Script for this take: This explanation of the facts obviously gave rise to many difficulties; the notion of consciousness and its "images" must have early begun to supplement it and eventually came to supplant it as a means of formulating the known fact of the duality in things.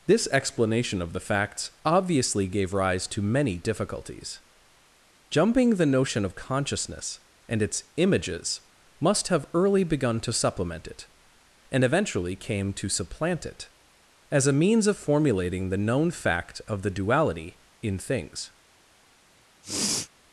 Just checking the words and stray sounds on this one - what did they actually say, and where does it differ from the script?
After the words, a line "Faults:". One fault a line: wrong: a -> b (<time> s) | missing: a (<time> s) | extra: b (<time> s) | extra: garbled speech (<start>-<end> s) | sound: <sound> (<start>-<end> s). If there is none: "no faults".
This explanation of the facts obviously gave rise to many difficulties; jumping the notion of consciousness and its "images" must have early begun to supplement it and eventually came to supplant it as a means of formulating the known fact of the duality in things.
Faults:
extra: jumping (5.3 s)
sound: sniff (19.6-20.1 s)